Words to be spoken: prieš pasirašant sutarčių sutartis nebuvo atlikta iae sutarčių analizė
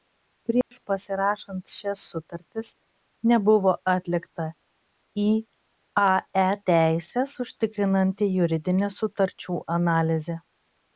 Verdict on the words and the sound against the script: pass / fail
fail